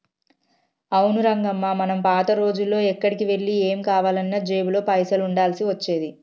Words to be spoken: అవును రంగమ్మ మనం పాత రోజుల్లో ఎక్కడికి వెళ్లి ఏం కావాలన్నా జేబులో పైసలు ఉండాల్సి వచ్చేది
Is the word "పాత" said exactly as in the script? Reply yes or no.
yes